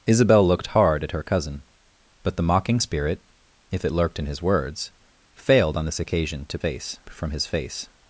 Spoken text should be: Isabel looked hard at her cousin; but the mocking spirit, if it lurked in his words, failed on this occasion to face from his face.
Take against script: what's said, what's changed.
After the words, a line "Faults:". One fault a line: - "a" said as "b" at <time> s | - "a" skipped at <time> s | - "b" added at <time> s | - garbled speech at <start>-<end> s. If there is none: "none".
Isabel looked hard at her cousin; but the mocking spirit, if it lurked in his words, failed on this occasion to face from his face.
Faults:
none